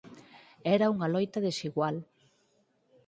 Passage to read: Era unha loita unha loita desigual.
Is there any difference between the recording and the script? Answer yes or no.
yes